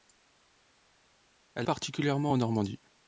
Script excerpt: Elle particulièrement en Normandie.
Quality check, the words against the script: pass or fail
pass